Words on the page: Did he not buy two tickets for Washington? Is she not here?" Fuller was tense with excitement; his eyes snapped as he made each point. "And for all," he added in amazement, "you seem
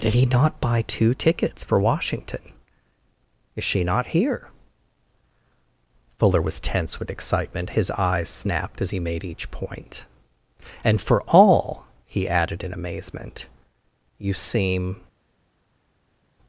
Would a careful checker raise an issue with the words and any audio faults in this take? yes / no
no